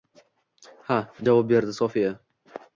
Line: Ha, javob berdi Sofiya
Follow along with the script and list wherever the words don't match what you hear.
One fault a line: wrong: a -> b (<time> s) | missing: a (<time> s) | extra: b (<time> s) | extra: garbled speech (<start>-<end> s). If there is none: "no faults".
no faults